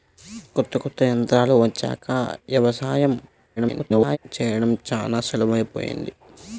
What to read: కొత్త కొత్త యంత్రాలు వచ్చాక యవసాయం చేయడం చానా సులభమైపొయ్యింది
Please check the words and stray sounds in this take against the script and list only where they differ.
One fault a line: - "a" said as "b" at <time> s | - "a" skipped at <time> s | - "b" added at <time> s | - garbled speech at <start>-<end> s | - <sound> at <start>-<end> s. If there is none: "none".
- garbled speech at 3.6-4.2 s